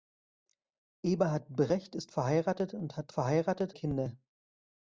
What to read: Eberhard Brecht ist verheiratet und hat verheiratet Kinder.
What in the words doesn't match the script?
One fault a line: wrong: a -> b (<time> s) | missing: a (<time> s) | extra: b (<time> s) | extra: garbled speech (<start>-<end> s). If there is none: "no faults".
no faults